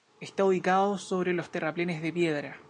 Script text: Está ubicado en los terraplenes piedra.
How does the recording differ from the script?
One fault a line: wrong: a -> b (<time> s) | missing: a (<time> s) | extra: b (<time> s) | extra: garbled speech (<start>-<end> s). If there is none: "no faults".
wrong: en -> sobre (1.0 s)
extra: de (2.0 s)